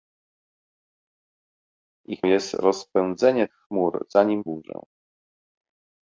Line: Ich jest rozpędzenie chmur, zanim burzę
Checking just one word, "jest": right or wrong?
right